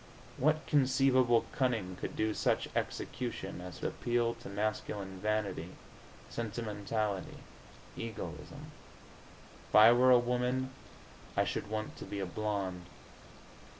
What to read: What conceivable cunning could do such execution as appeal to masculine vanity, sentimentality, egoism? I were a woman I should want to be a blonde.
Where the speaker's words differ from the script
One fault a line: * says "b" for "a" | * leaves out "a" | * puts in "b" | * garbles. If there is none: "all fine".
all fine